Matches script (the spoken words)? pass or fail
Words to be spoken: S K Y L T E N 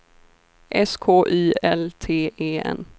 pass